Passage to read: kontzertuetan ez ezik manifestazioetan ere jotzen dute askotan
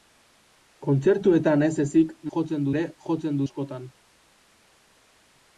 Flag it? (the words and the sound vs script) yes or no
yes